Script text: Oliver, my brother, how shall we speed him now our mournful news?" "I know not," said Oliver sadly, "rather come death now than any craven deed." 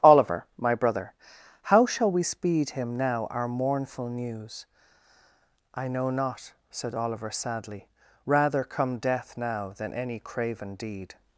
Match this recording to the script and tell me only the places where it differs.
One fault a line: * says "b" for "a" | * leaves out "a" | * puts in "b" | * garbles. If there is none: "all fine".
all fine